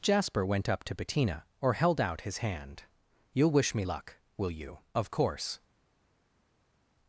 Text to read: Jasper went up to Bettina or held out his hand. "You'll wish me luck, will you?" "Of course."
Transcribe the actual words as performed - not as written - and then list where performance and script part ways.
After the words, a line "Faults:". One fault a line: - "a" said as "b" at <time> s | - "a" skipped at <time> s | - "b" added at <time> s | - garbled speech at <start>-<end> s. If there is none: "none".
Jasper went up to Bettina or held out his hand. "You'll wish me luck, will you?" "Of course."
Faults:
none